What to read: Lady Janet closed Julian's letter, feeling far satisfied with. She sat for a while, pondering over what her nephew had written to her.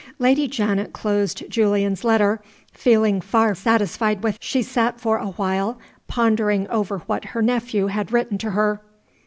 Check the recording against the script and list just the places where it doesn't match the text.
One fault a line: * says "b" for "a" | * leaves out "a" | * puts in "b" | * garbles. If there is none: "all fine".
all fine